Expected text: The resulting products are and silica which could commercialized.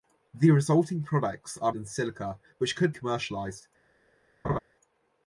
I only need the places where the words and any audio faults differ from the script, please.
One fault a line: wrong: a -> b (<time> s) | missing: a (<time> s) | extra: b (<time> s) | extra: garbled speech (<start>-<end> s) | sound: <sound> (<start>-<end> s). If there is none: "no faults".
sound: laugh (4.4-4.6 s)